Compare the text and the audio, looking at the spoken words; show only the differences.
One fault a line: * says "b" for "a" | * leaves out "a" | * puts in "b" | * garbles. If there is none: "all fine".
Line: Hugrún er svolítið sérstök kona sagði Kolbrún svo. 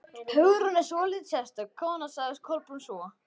all fine